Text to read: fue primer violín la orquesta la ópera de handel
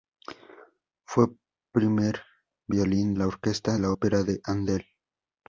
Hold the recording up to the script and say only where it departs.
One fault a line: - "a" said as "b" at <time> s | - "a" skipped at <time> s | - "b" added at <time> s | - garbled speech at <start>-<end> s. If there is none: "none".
none